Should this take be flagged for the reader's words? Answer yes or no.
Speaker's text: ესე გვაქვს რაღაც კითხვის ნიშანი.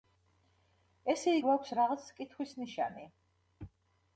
no